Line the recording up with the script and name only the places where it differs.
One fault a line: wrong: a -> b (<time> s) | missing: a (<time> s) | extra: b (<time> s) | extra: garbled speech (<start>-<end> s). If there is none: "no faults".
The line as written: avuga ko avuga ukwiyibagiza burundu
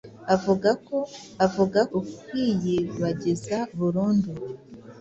no faults